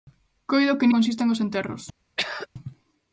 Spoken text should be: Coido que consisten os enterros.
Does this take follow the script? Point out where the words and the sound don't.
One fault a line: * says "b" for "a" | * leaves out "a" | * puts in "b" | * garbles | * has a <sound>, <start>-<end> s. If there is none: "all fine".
* has a throat clearing, 2.2-2.5 s